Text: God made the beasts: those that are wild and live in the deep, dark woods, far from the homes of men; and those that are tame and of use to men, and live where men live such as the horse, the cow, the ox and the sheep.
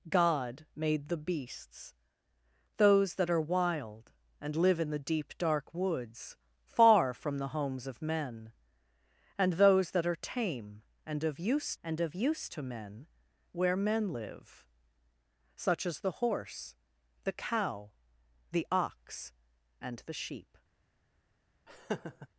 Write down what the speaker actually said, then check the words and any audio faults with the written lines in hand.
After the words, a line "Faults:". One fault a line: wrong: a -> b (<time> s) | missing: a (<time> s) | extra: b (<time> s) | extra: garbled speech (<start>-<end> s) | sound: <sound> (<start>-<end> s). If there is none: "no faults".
God made the beasts: those that are wild and live in the deep, dark woods, far from the homes of men; and those that are tame and of use and of use to men, where men live such as the horse, the cow, the ox and the sheep.
Faults:
extra: and of use (11.8 s)
missing: and live (13.1 s)
sound: laugh (21.7-22.3 s)